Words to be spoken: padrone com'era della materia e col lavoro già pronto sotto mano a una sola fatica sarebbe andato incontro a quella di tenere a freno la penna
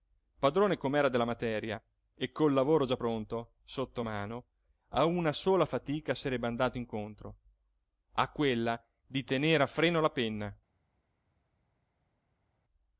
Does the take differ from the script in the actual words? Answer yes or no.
no